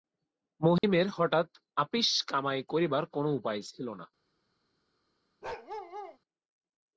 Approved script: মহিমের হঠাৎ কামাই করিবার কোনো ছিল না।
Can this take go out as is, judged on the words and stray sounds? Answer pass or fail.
fail